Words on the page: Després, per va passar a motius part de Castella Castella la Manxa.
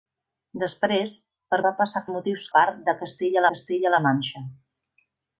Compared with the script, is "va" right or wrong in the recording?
right